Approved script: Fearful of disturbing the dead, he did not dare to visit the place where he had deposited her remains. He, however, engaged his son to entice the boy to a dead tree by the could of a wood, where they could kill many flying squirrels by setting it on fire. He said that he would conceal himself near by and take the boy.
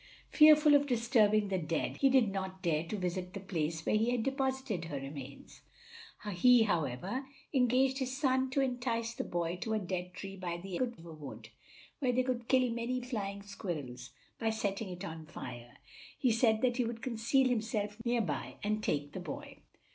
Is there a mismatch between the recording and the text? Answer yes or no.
no